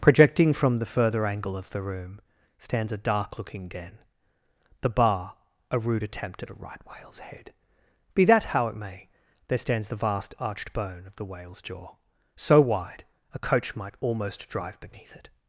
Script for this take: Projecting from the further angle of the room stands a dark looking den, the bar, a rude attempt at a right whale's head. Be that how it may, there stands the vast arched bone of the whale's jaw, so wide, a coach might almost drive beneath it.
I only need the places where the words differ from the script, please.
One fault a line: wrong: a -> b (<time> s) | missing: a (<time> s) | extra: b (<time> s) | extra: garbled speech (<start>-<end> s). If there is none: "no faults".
no faults